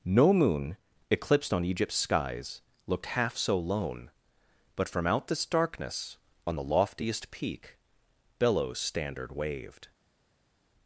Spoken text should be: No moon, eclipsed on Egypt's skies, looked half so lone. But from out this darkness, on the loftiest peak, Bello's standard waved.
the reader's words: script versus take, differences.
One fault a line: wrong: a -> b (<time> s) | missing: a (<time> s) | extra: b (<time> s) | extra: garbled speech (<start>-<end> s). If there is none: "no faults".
no faults